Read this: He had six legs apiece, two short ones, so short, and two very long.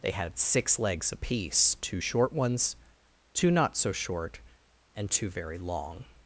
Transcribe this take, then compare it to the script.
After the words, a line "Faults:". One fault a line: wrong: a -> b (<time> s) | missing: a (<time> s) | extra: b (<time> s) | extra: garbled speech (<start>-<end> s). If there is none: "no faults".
They had six legs apiece, two short ones, two not so short, and two very long.
Faults:
wrong: He -> They (0.0 s)
extra: two not (3.3 s)